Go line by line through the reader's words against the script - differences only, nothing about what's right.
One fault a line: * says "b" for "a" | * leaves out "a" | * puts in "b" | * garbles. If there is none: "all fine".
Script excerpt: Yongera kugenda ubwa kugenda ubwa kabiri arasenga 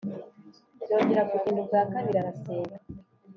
* leaves out "kugenda ubwa"